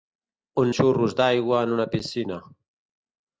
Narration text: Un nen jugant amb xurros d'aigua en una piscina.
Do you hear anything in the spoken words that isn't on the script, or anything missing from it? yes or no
yes